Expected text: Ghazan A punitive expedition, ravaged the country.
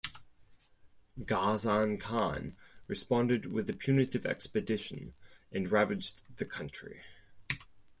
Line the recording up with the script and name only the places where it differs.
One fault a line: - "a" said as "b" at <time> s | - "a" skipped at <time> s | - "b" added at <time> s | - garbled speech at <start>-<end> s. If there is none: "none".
- "Khan responded with" added at 2.0 s
- "and" added at 5.5 s